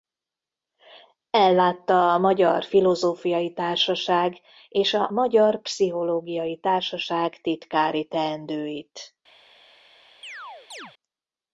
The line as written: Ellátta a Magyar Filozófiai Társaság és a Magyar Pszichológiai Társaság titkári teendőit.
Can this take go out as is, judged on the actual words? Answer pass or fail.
pass